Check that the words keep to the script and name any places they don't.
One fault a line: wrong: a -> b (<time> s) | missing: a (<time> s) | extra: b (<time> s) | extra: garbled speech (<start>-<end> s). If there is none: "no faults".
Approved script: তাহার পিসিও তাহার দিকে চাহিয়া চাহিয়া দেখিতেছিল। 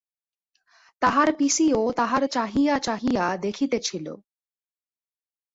missing: দিকে (2.2 s)